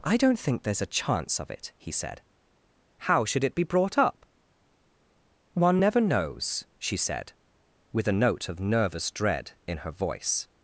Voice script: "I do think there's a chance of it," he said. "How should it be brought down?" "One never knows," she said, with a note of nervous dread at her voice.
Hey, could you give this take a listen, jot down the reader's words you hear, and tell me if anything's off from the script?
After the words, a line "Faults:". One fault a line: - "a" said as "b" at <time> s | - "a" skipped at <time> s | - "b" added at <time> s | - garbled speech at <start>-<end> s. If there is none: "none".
"I don't think there's a chance of it," he said. "How should it be brought up?" "One never knows," she said, with a note of nervous dread in her voice.
Faults:
- "do" said as "don't" at 0.2 s
- "down" said as "up" at 4.0 s
- "at" said as "in" at 9.7 s